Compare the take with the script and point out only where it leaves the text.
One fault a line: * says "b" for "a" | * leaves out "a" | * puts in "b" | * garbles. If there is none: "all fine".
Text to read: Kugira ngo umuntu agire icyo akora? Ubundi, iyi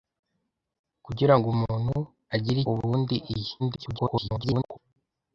* leaves out "icyo akora"
* garbles